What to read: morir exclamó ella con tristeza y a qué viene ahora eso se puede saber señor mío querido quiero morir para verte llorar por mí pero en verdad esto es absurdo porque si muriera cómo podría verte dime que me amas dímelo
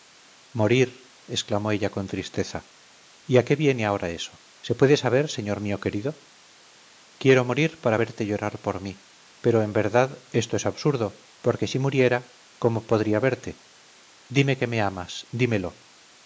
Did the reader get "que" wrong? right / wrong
right